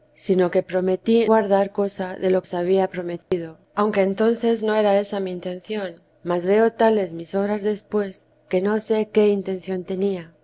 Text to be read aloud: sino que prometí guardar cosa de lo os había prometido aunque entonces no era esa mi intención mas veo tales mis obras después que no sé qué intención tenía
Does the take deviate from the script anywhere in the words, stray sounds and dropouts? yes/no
yes